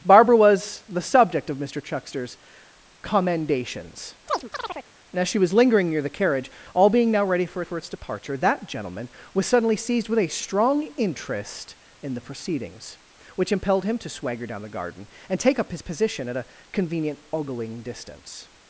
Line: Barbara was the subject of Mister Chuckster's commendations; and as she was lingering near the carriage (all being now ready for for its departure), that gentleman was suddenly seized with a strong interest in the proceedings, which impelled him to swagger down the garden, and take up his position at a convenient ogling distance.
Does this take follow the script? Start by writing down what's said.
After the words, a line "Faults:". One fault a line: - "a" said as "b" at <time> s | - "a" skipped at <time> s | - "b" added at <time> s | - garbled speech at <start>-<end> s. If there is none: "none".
Barbara was the subject of Mister Chuckster's commendations; and as she was lingering near the carriage (all being now ready for for its departure), that gentleman was suddenly seized with a strong interest in the proceedings, which impelled him to swagger down the garden, and take up his position at a convenient ogling distance.
Faults:
none